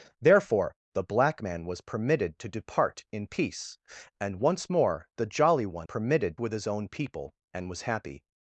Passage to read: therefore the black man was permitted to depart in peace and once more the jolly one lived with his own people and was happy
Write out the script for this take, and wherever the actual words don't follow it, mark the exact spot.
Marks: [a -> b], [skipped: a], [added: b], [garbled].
therefore the black man was permitted to depart in peace and once more the jolly one [lived -> permitted] with his own people and was happy